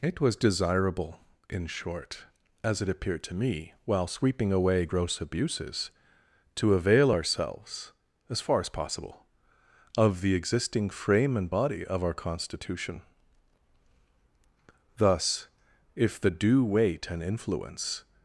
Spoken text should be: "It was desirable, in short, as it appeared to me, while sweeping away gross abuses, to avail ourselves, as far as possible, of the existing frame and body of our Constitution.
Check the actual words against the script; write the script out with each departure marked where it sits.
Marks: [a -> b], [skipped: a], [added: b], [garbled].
"It was desirable, in short, as it appeared to me, while sweeping away gross abuses, to avail ourselves, as far as possible, of the existing frame and body of our Constitution. [added: Thus if the due weight and influence]